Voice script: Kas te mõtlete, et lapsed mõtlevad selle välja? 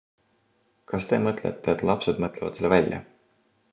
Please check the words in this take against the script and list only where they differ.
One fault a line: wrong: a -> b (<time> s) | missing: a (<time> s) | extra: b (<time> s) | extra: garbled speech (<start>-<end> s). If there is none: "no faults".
no faults